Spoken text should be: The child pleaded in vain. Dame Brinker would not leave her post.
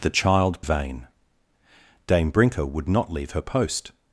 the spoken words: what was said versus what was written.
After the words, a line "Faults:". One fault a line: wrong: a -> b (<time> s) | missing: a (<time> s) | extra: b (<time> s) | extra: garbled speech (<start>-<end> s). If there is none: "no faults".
The child vain. Dame Brinker would not leave her post.
Faults:
missing: pleaded in (0.6 s)